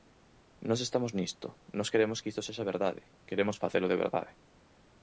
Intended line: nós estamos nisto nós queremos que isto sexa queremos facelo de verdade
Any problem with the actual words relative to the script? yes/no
yes